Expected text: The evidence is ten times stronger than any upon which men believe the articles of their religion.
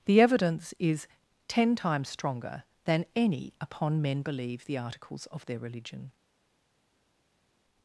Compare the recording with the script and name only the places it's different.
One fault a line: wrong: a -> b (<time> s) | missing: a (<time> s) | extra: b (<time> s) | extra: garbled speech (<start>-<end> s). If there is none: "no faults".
missing: which (4.0 s)